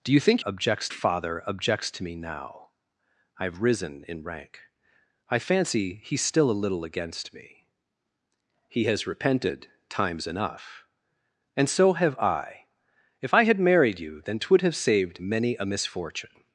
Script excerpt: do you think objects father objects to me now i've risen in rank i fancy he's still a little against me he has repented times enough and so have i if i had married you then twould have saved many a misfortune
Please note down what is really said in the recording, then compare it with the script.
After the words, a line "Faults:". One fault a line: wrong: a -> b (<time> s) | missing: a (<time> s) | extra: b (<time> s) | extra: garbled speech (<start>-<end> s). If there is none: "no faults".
do you think objects father objects to me now i've risen in rank i fancy he's still a little against me he has repented times enough and so have i if i had married you then twould have saved many a misfortune
Faults:
no faults